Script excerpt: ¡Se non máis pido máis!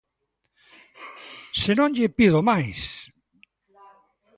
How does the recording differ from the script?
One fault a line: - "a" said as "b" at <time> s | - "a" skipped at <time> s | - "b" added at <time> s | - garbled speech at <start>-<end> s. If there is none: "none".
- "máis" said as "lle" at 1.9 s